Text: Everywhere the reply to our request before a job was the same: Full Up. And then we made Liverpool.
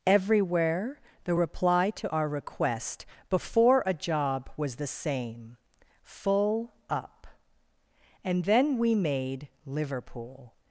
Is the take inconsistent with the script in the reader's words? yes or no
no